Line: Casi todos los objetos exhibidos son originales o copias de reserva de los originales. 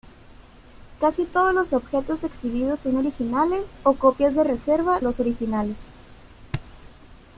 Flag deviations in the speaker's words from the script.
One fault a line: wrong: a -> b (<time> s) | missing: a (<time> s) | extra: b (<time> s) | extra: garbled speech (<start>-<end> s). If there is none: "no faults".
missing: de (5.0 s)